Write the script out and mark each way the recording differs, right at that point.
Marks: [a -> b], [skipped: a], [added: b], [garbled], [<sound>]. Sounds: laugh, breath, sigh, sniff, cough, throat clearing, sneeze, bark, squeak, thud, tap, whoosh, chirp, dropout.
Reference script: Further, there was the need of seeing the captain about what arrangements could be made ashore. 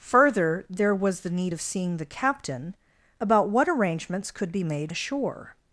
Further, there was the need of seeing the captain about what arrangements could be made ashore.